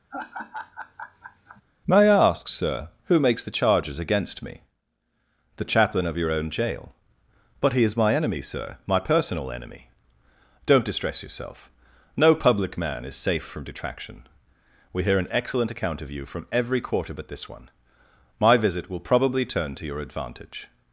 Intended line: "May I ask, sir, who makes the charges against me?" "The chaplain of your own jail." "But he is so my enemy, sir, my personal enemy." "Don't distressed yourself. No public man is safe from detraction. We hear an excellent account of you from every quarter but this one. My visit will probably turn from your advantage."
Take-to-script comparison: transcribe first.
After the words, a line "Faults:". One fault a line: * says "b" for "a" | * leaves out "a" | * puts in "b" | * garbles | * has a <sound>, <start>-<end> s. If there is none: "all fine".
"May I ask, sir, who makes the charges against me?" "The chaplain of your own jail." "But he is my enemy, sir, my personal enemy." "Don't distress yourself. No public man is safe from detraction. We hear an excellent account of you from every quarter but this one. My visit will probably turn to your advantage."
Faults:
* has a laugh, 0.1-1.6 s
* leaves out "so"
* says "distress" for "distressed"
* says "to" for "from"